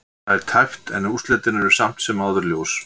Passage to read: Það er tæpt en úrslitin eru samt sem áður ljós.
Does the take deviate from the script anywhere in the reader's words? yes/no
no